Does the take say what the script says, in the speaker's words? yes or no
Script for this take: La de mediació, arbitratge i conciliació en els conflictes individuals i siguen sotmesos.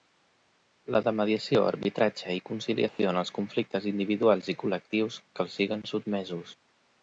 no